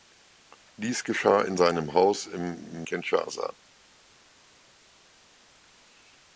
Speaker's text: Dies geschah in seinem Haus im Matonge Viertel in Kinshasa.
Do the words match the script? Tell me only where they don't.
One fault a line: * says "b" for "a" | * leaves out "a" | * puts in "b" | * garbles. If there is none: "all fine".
* leaves out "Matonge Viertel in"